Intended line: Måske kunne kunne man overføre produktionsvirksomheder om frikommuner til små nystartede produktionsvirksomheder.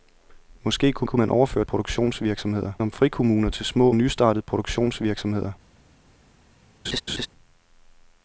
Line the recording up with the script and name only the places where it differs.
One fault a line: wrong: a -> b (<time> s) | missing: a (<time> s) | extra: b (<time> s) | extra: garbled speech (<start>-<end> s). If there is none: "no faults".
no faults